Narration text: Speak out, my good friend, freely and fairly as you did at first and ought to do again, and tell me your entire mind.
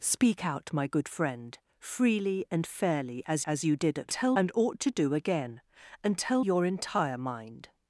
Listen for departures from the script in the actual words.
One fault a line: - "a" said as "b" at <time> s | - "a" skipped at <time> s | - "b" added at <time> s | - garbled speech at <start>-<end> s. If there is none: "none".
- "as" added at 3.5 s
- "first" said as "tell" at 4.1 s
- "me" skipped at 6.4 s